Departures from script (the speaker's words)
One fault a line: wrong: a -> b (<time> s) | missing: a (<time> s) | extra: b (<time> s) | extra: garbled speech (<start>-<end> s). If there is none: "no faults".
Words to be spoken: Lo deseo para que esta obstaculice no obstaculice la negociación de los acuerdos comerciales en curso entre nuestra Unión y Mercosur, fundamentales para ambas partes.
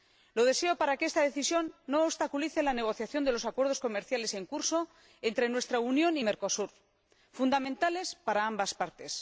wrong: obstaculice -> decisión (1.3 s)